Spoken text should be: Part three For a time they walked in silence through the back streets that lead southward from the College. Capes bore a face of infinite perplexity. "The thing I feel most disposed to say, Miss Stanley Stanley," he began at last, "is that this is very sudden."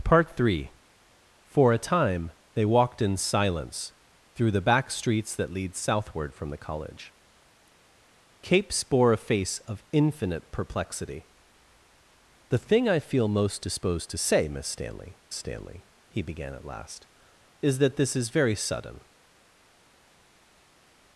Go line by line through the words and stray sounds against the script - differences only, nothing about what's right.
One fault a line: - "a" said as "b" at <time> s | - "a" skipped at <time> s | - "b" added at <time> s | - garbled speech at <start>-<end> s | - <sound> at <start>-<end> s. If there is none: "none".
none